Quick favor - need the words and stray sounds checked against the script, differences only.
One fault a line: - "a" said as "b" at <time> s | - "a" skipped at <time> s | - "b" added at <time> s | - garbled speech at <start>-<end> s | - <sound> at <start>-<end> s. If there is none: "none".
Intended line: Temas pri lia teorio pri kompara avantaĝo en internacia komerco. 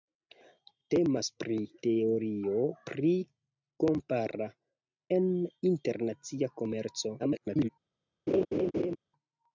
- "lia" skipped at 1.6 s
- "avantaĝo" skipped at 4.5 s
- garbled speech at 7.2-7.7 s
- laugh at 8.3-9.0 s